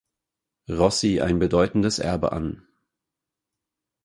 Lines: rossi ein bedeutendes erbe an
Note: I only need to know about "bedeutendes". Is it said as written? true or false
true